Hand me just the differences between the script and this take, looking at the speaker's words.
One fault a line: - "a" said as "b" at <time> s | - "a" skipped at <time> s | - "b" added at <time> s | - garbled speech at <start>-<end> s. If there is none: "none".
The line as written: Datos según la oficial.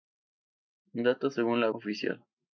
none